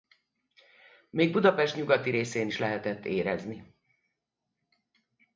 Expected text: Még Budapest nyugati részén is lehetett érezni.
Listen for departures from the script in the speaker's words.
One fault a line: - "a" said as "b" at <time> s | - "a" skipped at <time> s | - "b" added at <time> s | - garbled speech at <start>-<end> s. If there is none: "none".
none